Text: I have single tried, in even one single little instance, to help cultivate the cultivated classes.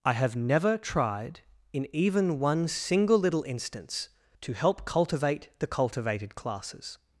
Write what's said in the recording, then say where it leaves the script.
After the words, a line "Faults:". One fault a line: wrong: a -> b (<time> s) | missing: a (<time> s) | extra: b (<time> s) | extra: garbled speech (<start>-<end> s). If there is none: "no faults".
I have never tried, in even one single little instance, to help cultivate the cultivated classes.
Faults:
wrong: single -> never (0.3 s)